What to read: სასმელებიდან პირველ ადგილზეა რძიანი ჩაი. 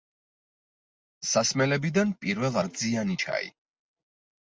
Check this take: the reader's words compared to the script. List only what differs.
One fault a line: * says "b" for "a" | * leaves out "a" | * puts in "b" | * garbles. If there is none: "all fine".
* leaves out "ადგილზეა"